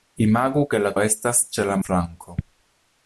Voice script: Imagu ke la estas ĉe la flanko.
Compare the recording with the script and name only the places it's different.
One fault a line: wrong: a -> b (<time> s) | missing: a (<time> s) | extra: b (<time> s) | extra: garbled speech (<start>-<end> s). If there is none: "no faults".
no faults